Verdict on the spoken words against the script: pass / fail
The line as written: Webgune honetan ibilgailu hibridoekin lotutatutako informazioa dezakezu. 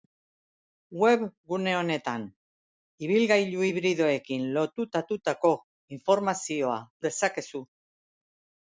pass